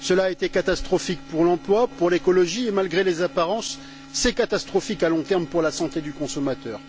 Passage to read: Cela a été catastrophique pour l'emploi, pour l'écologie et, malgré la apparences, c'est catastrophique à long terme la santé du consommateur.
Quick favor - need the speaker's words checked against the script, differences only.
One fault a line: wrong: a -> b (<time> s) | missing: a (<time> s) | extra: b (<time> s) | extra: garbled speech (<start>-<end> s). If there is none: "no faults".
wrong: la -> les (3.0 s)
extra: pour (5.5 s)